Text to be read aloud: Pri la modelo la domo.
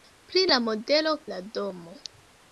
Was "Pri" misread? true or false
false